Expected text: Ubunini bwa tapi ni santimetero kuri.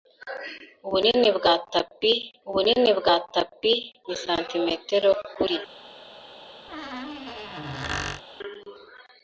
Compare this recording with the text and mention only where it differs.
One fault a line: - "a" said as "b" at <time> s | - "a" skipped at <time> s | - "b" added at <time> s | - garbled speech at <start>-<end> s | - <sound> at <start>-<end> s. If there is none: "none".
- "ubunini bwa tapi" added at 2.5 s
- squeak at 6.7-8.2 s